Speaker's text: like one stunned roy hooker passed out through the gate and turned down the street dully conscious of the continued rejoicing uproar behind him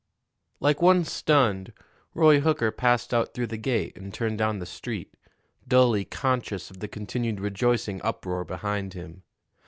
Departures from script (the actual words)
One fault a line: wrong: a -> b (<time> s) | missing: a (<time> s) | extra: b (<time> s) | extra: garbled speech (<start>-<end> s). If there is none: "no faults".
no faults